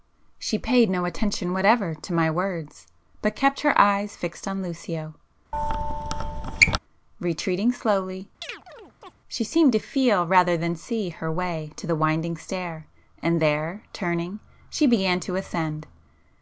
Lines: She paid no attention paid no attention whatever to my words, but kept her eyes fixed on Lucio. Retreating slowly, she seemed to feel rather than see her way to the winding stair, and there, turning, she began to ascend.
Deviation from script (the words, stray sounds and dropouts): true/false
true